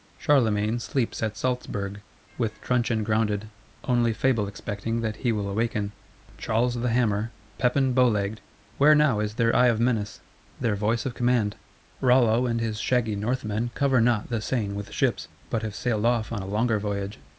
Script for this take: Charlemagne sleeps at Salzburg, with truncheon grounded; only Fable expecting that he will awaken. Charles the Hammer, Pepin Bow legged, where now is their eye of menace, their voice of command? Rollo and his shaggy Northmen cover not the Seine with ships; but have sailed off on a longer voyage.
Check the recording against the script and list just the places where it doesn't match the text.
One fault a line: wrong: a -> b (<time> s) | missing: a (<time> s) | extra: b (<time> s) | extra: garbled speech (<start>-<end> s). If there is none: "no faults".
no faults